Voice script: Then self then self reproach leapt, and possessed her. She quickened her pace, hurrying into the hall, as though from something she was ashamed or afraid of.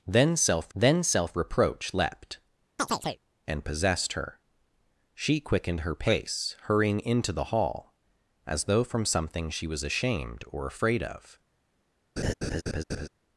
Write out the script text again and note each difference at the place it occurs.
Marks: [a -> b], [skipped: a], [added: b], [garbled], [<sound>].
Then self then self reproach leapt, [chirp] and possessed her. She quickened her pace, hurrying into the hall, as though from something she was ashamed or afraid of. [laugh]